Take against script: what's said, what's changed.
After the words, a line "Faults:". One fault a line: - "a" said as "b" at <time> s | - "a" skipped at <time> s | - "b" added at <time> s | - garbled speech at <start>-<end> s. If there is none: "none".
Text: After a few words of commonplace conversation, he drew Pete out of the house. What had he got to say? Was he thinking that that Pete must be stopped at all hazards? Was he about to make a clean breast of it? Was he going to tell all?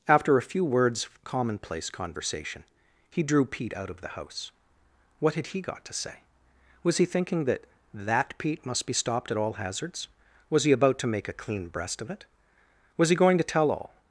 After a few words of commonplace conversation, he drew Pete out of the house. What had he got to say? Was he thinking that that Pete must be stopped at all hazards? Was he about to make a clean breast of it? Was he going to tell all?
Faults:
none